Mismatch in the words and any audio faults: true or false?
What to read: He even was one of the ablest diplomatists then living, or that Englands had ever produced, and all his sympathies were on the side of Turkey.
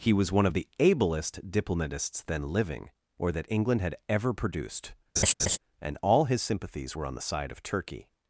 true